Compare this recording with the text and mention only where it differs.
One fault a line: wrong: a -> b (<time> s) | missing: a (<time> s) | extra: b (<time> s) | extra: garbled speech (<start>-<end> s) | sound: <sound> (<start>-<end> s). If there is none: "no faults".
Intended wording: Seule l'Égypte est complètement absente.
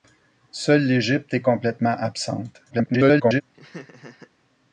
extra: garbled speech (2.7-3.4 s)
sound: laugh (3.5-4.3 s)